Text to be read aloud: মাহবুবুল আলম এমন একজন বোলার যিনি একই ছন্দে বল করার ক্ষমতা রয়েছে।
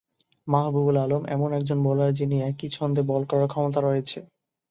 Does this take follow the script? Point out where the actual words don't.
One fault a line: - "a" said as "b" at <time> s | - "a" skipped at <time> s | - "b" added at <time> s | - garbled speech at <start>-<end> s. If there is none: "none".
none